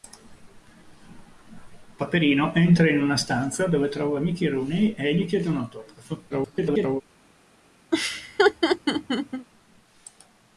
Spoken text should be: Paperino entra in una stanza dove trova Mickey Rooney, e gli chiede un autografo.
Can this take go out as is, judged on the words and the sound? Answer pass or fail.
fail